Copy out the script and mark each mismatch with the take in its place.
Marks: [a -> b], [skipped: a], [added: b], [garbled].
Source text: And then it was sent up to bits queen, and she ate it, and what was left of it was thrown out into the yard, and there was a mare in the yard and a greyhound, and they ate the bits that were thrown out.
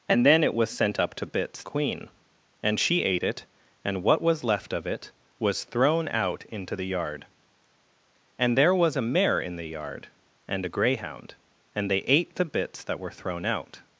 And then it was sent up to bits queen, and she ate it, and what was left of it was thrown out into the yard, and there was a mare in the yard and a greyhound, and they ate the bits that were thrown out.